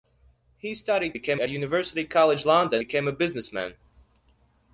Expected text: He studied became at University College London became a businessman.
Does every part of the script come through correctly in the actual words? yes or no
yes